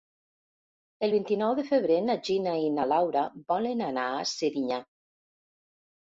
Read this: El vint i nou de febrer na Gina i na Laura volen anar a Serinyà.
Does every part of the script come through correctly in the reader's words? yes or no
yes